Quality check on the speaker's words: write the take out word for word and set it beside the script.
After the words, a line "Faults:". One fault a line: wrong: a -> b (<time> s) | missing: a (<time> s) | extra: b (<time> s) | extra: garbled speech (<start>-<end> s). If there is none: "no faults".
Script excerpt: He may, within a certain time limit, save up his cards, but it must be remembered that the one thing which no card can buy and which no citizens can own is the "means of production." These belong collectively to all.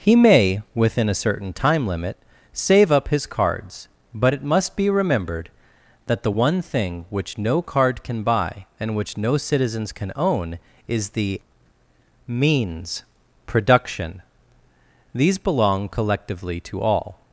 He may, within a certain time limit, save up his cards, but it must be remembered that the one thing which no card can buy and which no citizens can own is the "means production." These belong collectively to all.
Faults:
missing: of (13.0 s)